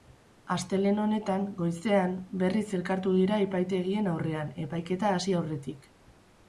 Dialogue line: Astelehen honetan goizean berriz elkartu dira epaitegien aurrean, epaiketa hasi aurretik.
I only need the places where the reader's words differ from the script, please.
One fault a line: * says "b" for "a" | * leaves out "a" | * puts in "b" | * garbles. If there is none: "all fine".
all fine